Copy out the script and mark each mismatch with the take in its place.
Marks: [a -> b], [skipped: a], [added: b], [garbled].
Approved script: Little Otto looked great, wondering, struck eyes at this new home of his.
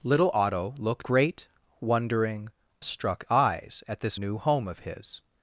Little Otto looked great, wondering, struck eyes at this new home of his.